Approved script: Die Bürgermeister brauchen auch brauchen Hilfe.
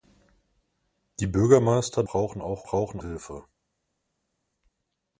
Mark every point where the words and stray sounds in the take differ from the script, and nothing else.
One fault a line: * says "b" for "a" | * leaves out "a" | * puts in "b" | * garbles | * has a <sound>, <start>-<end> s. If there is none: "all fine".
all fine